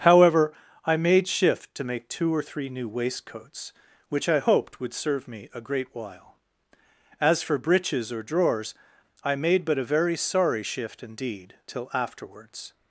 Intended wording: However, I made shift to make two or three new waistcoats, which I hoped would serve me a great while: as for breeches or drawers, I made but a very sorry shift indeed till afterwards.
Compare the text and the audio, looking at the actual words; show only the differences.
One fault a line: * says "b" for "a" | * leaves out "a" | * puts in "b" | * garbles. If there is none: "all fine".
all fine